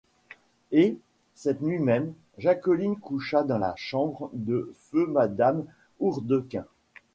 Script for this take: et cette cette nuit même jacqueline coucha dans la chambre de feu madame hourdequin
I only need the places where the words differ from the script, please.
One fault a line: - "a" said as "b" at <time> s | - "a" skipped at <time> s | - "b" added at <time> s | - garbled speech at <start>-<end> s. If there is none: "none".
- "cette" skipped at 1.6 s